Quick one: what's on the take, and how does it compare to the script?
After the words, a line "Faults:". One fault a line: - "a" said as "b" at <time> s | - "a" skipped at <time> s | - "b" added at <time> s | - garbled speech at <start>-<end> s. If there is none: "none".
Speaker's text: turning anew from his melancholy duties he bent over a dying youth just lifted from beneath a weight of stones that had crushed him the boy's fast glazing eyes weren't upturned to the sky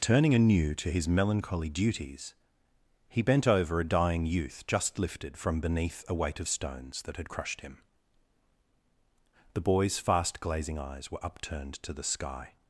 turning anew to his melancholy duties he bent over a dying youth just lifted from beneath a weight of stones that had crushed him the boy's fast glazing eyes were upturned to the sky
Faults:
- "from" said as "to" at 0.7 s
- "weren't" said as "were" at 11.1 s